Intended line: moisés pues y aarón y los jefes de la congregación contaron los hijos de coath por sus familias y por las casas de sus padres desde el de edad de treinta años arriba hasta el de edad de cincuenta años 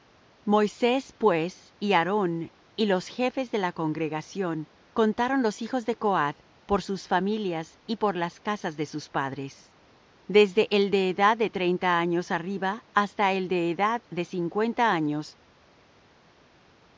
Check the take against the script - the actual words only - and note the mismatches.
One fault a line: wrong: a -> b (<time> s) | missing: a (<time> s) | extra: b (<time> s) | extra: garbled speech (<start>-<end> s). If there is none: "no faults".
no faults